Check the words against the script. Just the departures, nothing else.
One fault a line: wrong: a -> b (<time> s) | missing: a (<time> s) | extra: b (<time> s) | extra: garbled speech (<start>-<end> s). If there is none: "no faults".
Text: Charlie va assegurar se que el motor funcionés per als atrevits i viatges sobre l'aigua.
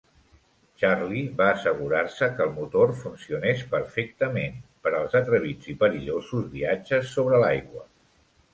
extra: perfectament (3.8 s)
extra: perillosos (5.9 s)